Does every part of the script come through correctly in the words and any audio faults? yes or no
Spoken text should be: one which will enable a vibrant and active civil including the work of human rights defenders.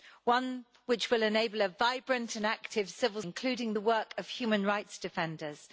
yes